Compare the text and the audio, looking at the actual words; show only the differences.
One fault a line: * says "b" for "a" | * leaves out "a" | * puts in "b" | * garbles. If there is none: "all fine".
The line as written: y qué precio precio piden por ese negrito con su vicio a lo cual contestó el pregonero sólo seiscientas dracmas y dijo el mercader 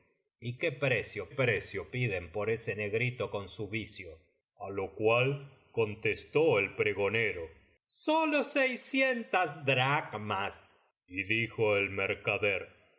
all fine